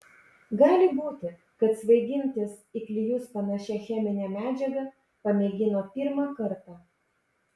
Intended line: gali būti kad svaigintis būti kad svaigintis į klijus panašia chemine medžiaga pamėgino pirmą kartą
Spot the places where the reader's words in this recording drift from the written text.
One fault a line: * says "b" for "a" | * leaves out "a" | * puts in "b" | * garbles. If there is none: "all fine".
* leaves out "būti kad svaigintis"